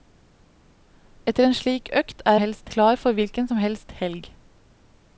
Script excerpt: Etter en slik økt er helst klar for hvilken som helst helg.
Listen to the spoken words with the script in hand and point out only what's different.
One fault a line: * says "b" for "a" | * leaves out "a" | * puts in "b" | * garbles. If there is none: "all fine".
all fine